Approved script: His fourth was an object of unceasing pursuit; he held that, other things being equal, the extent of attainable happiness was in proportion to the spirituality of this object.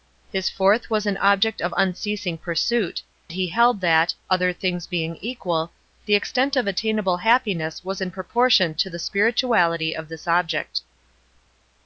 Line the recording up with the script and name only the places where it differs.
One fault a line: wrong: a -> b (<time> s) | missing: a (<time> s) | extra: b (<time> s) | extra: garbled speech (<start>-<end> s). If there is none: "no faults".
no faults